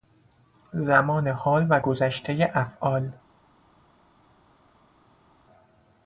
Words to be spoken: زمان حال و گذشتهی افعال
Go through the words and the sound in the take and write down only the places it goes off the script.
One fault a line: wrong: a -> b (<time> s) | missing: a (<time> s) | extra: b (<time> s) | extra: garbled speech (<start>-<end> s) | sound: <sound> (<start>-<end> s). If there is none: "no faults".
no faults